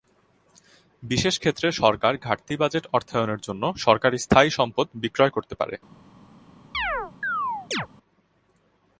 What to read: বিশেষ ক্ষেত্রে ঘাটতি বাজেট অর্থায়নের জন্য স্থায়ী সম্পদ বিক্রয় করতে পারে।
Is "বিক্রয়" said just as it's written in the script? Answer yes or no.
yes